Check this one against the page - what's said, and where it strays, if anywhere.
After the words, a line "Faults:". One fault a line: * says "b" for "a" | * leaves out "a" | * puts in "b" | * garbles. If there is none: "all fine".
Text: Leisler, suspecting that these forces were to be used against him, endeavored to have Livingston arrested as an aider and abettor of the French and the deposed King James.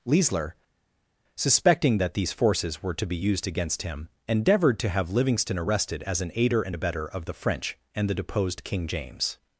Leisler, suspecting that these forces were to be used against him, endeavored to have Livingston arrested as an aider and abettor of the French and the deposed King James.
Faults:
all fine